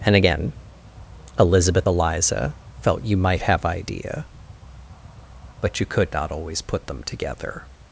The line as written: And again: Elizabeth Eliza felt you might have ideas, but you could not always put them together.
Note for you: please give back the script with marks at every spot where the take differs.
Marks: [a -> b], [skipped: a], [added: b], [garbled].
And again: Elizabeth Eliza felt you might have [ideas, -> idea] but you could not always put them together.